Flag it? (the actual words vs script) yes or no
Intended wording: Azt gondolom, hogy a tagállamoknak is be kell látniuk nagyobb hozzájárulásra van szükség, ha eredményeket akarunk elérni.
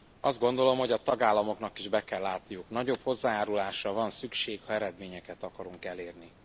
no